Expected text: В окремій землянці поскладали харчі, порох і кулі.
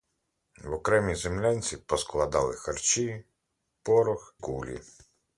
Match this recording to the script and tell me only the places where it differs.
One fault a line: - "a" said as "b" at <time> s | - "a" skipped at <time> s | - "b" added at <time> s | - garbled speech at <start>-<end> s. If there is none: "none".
- "і" skipped at 4.3 s